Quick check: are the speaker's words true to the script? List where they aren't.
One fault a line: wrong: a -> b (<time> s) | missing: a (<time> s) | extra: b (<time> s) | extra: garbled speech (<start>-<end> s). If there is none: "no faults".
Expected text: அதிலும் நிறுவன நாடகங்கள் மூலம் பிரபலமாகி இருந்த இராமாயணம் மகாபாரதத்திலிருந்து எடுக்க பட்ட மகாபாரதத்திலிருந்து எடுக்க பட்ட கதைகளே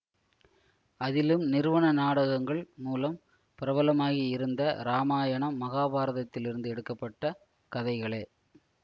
missing: மகாபாரதத்திலிருந்து எடுக்க பட்ட (7.3 s)